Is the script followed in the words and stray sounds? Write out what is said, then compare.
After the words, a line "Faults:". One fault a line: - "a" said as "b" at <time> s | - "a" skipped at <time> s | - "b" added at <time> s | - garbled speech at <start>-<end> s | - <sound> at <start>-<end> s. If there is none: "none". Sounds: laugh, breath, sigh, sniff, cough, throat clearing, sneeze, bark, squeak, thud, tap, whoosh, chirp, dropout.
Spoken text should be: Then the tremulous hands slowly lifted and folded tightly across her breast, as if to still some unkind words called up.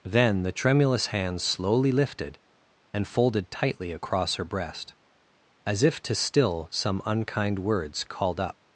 Then the tremulous hands slowly lifted and folded tightly across her breast, as if to still some unkind words called up.
Faults:
none